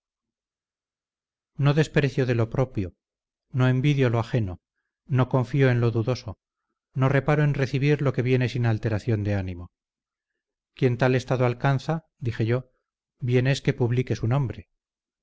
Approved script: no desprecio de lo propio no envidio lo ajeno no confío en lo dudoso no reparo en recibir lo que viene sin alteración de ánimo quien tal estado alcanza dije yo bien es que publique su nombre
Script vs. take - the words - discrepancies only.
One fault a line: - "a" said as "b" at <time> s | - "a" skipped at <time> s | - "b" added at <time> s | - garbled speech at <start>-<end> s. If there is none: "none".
none